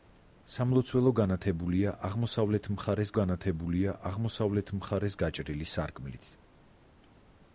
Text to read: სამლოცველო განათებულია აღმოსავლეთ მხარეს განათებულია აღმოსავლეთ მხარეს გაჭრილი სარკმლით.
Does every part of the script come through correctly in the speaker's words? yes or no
yes